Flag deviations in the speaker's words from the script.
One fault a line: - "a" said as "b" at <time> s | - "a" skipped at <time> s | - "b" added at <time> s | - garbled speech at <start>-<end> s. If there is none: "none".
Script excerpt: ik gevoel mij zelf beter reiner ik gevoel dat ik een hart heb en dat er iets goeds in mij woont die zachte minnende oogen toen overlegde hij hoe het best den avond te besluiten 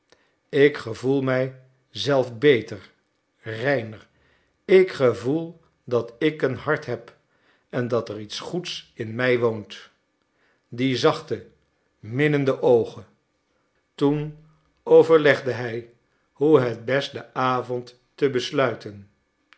none